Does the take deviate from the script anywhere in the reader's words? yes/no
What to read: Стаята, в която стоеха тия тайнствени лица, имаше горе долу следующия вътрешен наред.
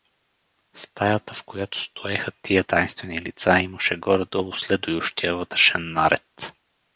no